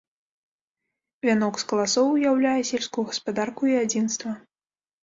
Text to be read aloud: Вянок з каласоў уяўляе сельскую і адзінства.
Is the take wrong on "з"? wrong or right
right